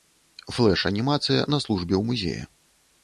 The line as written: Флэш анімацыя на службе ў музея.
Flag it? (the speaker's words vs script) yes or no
no